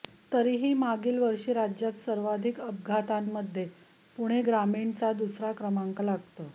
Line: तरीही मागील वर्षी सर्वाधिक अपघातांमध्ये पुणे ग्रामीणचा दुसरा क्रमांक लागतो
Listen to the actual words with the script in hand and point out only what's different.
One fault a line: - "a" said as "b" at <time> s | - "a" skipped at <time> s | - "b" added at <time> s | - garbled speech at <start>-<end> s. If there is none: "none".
- "राज्यात" added at 1.5 s